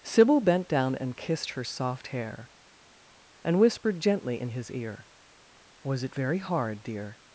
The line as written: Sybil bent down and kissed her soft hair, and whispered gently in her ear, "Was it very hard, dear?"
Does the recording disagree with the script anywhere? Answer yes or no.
yes